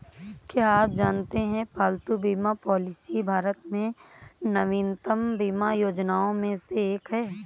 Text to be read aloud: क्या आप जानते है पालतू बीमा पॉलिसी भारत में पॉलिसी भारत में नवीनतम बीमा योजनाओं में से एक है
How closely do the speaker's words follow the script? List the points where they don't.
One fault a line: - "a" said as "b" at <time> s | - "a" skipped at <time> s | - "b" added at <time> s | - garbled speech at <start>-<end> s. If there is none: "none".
- "पॉलिसी भारत में" skipped at 3.9 s